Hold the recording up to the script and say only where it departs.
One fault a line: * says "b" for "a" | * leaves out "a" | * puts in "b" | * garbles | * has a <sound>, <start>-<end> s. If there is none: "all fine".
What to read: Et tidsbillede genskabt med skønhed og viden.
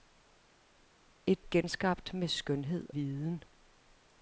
* leaves out "tidsbillede"
* leaves out "og"